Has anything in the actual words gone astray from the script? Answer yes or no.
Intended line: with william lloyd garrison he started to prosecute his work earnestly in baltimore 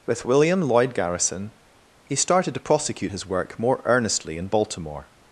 yes